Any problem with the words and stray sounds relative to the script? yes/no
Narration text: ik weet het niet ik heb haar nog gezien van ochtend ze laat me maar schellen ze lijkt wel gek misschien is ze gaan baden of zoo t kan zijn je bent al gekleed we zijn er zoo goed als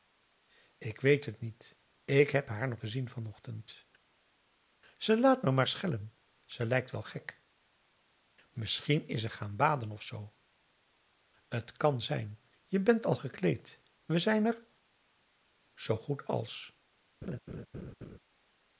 yes